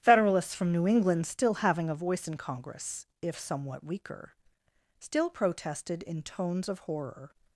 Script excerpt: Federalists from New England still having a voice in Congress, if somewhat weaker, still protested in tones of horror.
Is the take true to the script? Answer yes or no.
yes